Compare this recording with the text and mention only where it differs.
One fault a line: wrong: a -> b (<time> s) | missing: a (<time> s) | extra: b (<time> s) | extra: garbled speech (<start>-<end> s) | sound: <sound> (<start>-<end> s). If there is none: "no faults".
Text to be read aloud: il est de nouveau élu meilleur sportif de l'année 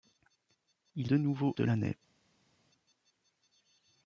missing: est (1.1 s)
missing: élu meilleur sportif (1.5 s)